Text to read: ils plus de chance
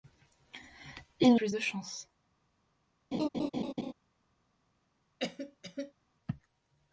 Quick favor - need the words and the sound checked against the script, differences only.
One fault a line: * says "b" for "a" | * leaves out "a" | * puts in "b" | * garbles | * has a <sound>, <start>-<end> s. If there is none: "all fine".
* has a laugh, 3.1-3.9 s
* has a cough, 5.2-5.9 s